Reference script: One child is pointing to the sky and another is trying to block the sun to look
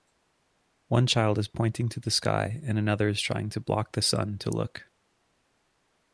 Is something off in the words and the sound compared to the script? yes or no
no